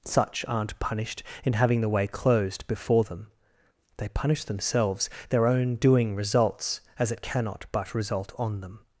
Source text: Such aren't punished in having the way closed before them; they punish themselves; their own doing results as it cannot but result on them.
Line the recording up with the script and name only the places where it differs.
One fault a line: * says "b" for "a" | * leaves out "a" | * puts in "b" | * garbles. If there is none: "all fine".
all fine